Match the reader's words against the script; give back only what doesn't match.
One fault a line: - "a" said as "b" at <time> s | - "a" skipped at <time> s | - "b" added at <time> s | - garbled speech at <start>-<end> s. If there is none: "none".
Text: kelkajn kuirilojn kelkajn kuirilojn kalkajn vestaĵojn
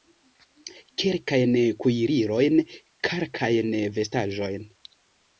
- "kelkajn kuirilojn" skipped at 2.6 s